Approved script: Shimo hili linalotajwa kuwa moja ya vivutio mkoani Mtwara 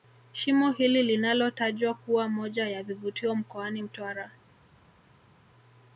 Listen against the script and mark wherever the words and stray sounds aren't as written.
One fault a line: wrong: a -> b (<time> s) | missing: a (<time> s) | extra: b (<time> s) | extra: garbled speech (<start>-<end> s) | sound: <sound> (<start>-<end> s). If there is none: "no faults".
no faults